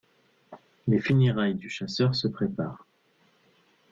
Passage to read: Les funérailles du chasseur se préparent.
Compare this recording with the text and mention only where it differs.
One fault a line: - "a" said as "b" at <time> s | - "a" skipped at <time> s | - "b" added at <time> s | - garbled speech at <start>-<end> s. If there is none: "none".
none